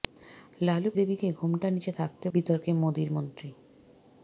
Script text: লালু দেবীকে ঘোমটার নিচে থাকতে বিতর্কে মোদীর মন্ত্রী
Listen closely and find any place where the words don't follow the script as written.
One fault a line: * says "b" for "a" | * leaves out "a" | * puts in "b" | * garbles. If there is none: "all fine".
all fine